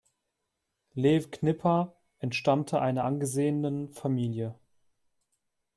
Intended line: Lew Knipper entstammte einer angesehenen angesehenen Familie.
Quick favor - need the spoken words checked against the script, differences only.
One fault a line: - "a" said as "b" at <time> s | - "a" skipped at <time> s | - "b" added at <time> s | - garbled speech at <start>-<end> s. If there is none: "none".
- "angesehenen" skipped at 3.9 s